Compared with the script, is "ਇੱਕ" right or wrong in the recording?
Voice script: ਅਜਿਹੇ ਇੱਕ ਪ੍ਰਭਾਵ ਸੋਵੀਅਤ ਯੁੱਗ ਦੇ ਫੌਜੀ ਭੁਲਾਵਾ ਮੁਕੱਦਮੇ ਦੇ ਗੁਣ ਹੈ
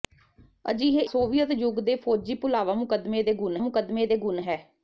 wrong